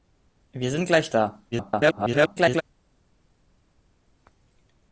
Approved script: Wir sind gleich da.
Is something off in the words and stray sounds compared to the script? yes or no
yes